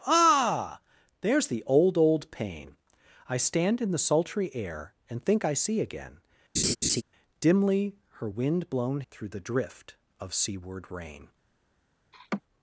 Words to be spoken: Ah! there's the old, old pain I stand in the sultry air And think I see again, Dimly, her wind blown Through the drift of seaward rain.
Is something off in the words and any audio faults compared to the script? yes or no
yes